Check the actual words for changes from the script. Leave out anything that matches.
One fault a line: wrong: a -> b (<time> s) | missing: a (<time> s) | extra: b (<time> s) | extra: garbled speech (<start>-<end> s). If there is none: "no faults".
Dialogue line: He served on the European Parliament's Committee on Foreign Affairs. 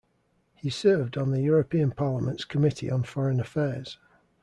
no faults